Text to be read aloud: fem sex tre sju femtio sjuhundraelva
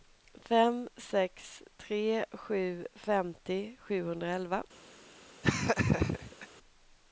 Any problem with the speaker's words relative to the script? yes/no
no